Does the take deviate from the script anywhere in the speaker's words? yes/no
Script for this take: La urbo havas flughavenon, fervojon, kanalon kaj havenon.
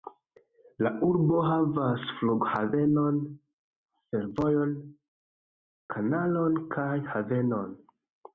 no